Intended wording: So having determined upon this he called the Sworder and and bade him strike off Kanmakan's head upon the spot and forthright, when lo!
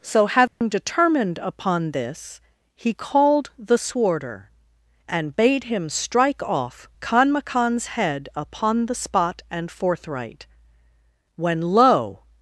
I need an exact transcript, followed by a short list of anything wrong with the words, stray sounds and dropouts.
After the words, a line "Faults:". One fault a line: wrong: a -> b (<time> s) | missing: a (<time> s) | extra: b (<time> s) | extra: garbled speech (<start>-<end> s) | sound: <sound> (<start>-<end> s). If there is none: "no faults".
So having determined upon this he called the Sworder and bade him strike off Kanmakan's head upon the spot and forthright, when lo!
Faults:
sound: dropout (0.5-0.6 s)
missing: and (5.3 s)